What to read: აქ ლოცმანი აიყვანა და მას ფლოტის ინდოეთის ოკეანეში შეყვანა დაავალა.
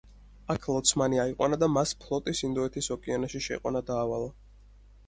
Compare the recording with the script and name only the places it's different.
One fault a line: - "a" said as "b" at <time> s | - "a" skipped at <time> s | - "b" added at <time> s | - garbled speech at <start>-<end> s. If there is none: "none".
none